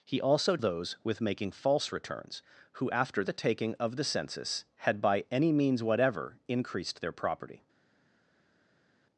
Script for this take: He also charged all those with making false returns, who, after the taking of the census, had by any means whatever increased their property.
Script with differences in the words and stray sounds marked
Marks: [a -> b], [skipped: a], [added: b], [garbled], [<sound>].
He also [skipped: charged all] those with making false returns, who, after the taking of the census, had by any means whatever increased their property.